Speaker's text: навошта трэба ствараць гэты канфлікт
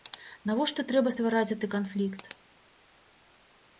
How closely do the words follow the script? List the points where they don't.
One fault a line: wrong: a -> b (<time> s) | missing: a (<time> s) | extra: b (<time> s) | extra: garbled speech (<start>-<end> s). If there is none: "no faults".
no faults